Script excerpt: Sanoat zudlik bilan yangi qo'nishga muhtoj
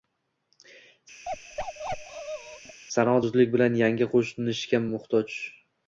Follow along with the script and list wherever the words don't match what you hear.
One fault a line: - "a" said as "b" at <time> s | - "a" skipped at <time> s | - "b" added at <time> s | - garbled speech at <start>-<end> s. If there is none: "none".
none